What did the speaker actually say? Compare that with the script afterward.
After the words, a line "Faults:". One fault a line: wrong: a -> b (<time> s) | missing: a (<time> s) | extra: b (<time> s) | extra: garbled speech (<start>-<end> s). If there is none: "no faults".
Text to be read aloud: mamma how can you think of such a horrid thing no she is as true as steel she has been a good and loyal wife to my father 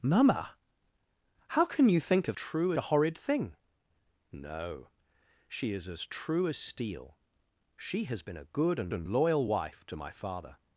mamma how can you think of true a horrid thing no she is as true as steel she has been a good and and loyal wife to my father
Faults:
wrong: such -> true (2.3 s)
extra: and (8.9 s)